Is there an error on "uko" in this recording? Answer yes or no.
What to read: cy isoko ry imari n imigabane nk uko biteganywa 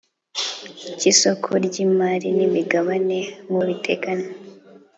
yes